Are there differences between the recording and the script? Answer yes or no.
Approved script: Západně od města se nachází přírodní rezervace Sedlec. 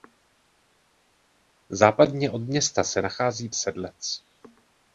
yes